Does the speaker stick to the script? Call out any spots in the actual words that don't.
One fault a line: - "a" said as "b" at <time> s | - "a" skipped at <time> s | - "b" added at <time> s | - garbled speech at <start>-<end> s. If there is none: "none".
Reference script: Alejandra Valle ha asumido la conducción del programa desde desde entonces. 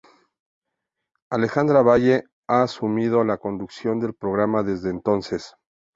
- "desde" skipped at 4.9 s